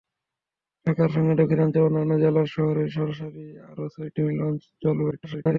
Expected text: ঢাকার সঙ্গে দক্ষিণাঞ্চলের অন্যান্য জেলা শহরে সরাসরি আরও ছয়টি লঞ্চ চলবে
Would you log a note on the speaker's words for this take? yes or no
yes